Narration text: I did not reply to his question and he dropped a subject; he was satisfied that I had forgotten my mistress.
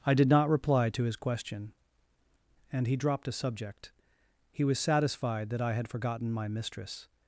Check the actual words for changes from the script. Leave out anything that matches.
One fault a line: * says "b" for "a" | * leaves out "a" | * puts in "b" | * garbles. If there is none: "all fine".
all fine